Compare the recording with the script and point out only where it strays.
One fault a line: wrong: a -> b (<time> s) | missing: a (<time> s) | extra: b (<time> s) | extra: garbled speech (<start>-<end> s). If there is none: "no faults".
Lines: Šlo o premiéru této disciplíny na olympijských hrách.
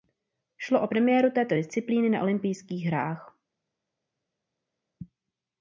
no faults